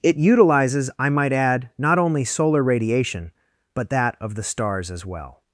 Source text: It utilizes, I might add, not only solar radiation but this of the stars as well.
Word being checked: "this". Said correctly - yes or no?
no